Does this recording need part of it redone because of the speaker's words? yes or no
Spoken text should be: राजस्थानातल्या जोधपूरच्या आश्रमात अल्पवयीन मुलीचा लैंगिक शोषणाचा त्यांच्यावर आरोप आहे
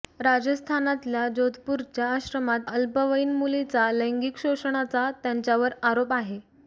no